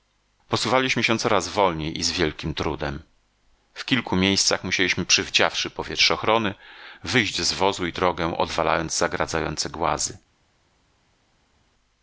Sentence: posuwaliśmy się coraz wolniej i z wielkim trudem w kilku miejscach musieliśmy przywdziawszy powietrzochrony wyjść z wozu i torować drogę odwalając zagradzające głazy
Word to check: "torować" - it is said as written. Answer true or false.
false